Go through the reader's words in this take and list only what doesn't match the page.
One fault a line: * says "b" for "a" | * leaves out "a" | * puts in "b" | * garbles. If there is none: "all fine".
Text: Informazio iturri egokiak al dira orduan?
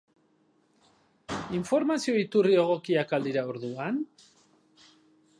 all fine